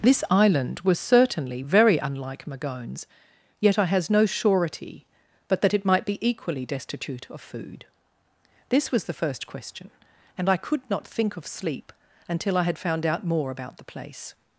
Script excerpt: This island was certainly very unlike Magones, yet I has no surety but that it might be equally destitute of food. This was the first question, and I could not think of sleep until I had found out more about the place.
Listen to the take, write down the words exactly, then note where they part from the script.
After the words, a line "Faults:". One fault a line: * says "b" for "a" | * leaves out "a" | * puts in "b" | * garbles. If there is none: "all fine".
This island was certainly very unlike Magones, yet I has no surety but that it might be equally destitute of food. This was the first question, and I could not think of sleep until I had found out more about the place.
Faults:
all fine